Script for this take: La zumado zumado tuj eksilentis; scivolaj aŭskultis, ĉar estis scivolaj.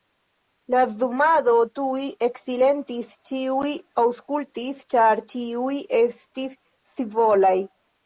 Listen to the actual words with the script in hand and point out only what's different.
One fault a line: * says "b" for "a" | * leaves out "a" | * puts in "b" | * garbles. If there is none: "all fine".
* leaves out "zumado"
* says "ĉiuj" for "scivolaj"
* puts in "ĉiuj"